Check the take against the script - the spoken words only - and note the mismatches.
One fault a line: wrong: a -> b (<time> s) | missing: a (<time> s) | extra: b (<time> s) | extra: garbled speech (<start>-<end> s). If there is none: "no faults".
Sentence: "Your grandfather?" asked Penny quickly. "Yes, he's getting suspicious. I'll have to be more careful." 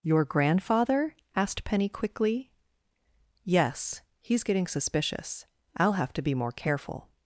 no faults